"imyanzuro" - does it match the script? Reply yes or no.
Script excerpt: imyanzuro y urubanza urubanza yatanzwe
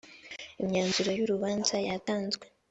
yes